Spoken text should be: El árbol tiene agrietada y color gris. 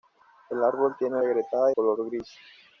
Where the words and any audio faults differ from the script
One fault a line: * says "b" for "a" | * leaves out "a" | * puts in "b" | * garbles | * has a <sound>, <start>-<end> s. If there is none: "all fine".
all fine